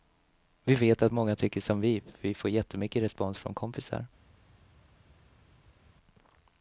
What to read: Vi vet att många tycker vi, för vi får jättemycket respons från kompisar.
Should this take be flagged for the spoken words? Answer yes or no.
yes